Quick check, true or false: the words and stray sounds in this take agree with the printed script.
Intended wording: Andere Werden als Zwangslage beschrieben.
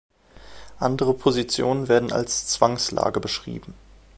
false